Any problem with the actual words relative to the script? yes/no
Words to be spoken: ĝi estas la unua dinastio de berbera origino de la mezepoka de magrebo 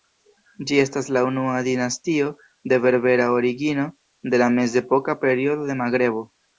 yes